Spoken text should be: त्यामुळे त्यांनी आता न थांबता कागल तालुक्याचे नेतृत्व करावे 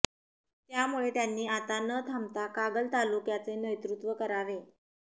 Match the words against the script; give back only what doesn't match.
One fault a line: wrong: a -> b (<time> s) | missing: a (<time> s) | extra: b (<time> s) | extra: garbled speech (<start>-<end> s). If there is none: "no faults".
no faults